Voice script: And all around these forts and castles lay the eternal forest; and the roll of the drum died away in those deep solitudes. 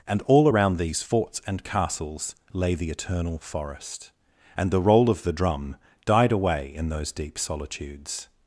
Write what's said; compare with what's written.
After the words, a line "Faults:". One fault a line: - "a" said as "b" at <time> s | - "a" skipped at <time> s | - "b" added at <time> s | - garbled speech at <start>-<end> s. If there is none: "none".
And all around these forts and castles lay the eternal forest; and the roll of the drum died away in those deep solitudes.
Faults:
none